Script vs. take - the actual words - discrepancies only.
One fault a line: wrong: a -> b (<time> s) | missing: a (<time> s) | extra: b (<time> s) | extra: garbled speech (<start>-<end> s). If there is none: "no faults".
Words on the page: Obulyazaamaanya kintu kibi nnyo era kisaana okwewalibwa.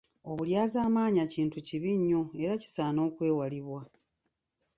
no faults